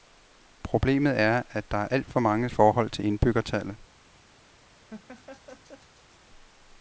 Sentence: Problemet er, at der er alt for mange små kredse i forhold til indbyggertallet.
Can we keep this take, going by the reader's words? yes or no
no